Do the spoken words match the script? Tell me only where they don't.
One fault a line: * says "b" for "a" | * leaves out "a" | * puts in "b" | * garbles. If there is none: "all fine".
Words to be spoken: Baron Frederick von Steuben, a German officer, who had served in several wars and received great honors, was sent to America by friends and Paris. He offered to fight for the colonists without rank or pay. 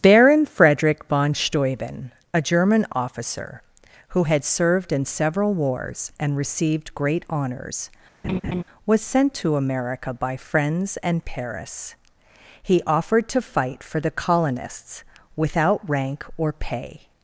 all fine